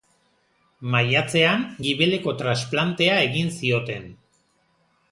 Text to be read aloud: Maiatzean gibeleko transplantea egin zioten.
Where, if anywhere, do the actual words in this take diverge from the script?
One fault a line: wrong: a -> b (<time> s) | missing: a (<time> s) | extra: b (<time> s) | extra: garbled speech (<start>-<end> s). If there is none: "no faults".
no faults